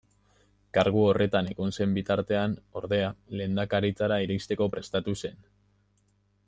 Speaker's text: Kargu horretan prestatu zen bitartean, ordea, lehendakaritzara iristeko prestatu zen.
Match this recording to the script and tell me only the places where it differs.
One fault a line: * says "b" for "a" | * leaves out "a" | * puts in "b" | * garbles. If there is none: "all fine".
* says "egon" for "prestatu"